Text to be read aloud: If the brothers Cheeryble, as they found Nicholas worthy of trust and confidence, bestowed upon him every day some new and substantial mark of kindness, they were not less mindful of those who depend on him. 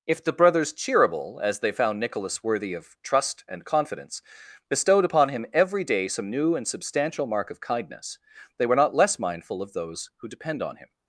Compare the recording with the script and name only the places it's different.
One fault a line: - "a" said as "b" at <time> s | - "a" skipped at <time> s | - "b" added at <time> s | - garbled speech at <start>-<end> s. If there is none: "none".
none